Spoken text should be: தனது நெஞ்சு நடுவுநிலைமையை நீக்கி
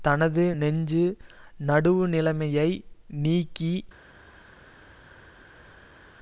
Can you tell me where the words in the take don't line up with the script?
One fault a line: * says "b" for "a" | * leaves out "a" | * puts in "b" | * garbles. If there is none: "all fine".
all fine